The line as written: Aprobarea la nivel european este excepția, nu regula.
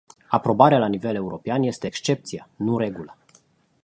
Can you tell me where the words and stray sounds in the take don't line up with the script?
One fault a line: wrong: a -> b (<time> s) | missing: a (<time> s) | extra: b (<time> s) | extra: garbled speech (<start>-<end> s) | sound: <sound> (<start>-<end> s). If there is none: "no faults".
no faults